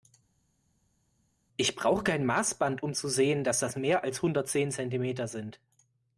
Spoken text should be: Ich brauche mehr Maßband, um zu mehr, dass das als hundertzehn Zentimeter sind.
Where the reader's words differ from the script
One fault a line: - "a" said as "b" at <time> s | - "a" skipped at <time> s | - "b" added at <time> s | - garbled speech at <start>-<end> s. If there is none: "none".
- "mehr" said as "kein" at 2.0 s
- "mehr" said as "sehen" at 3.1 s
- "mehr" added at 3.7 s